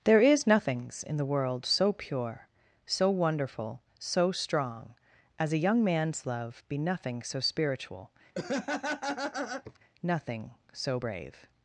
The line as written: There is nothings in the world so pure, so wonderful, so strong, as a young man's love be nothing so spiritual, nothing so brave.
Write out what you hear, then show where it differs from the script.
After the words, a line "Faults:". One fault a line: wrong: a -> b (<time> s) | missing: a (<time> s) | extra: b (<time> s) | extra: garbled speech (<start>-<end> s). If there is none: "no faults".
There is nothings in the world so pure, so wonderful, so strong, as a young man's love be nothing so spiritual, nothing so brave.
Faults:
no faults